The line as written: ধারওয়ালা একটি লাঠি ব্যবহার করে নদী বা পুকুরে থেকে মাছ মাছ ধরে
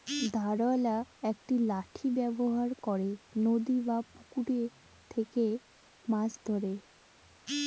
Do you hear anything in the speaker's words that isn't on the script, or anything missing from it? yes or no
yes